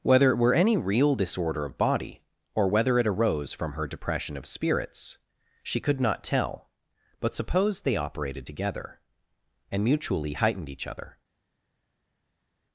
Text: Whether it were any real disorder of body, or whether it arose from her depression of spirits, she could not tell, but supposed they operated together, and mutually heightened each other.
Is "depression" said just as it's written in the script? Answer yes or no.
yes